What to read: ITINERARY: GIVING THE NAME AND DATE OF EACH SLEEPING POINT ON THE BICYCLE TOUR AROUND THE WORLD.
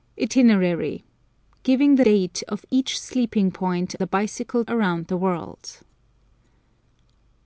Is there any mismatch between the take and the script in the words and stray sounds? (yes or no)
yes